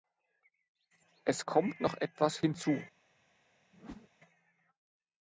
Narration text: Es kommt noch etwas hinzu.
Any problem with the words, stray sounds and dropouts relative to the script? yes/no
yes